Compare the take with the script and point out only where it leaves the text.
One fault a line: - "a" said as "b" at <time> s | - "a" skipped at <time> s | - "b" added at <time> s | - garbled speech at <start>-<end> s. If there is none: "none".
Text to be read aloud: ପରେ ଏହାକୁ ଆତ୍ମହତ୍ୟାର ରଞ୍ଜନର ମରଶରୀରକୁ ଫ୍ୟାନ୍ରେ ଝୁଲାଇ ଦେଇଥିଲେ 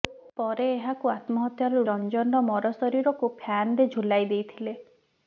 none